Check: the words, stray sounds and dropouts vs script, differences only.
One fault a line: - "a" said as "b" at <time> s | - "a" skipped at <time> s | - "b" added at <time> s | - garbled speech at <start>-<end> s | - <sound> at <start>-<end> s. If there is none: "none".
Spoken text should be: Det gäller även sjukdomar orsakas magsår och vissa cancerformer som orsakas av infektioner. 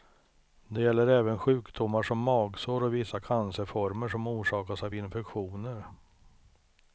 - "orsakas" said as "som" at 2.0 s